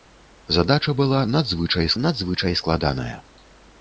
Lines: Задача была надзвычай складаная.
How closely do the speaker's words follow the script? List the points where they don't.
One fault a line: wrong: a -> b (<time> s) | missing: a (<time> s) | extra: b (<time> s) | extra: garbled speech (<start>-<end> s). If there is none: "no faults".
extra: надзвычай (2.0 s)